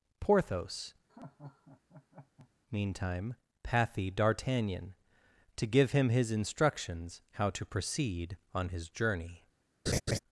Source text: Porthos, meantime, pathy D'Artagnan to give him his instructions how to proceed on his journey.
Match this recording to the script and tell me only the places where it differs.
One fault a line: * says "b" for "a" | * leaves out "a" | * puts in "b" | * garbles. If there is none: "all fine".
all fine